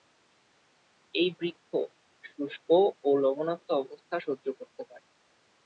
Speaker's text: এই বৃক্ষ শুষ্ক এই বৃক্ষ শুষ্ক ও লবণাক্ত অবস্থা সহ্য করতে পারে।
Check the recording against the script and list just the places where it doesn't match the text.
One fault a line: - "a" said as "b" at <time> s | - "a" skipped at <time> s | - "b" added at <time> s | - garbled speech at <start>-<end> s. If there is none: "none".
- "এই বৃক্ষ শুষ্ক" skipped at 2.7 s